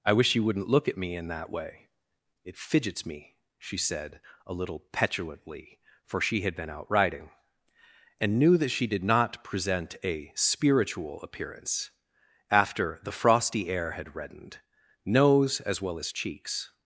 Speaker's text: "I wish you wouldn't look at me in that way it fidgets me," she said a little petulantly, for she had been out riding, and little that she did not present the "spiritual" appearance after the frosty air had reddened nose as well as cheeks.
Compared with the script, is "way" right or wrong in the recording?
right